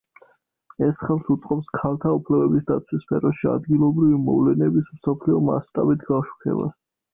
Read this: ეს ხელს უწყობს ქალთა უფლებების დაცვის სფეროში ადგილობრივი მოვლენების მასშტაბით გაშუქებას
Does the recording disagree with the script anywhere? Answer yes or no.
yes